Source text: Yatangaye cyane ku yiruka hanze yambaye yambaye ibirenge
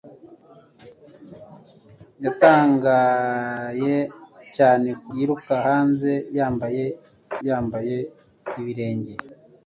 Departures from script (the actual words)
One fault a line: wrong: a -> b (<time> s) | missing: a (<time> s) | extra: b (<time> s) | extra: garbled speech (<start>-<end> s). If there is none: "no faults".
no faults